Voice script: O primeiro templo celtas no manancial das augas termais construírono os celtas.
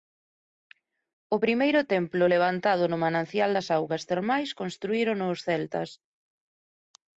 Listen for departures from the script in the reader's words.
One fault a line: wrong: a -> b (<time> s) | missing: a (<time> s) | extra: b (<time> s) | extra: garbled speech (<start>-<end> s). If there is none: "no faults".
wrong: celtas -> levantado (2.3 s)